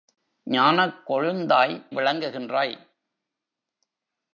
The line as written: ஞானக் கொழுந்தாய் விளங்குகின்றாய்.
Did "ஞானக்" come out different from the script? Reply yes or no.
no